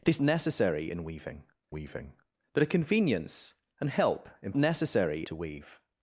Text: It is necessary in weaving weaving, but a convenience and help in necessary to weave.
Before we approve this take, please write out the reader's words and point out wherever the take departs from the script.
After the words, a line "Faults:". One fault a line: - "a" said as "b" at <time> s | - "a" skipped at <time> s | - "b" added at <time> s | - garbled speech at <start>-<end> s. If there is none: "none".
It is necessary in weaving weaving, but a convenience and help in necessary to weave.
Faults:
none